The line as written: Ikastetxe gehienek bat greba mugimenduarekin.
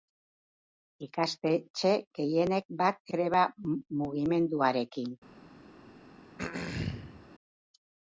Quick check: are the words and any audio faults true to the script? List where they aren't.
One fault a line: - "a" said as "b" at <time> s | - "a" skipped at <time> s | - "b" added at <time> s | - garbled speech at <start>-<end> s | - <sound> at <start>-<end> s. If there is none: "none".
- throat clearing at 6.4-7.3 s